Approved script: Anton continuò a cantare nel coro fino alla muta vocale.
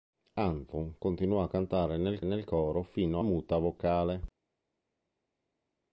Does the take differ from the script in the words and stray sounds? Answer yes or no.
yes